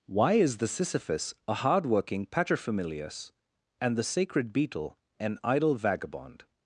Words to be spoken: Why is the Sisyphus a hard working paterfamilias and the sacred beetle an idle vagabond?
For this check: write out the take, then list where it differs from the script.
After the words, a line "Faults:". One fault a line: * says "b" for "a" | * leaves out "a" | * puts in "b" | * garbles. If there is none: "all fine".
Why is the Sisyphus a hard working paterfamilias and the sacred beetle an idle vagabond?
Faults:
all fine